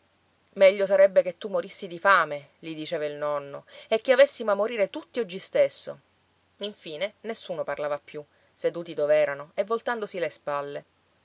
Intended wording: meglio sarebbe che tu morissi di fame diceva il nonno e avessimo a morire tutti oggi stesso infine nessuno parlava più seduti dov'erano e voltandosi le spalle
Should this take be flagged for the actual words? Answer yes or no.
yes